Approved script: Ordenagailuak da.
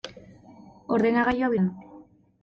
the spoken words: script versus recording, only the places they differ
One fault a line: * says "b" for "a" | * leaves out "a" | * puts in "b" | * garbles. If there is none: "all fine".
all fine